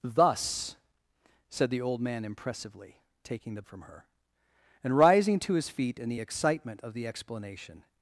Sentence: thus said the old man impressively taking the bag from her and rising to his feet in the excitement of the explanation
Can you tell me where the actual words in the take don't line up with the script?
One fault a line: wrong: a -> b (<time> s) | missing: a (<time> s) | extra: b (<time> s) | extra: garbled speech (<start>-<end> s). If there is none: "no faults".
missing: bag (3.6 s)